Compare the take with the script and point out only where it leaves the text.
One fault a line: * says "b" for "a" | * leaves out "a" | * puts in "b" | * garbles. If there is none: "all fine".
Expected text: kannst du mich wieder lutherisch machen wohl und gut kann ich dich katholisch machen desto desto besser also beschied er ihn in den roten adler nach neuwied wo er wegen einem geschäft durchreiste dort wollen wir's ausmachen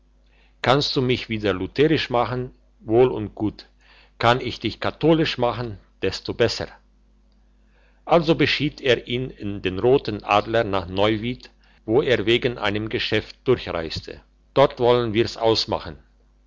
* leaves out "desto"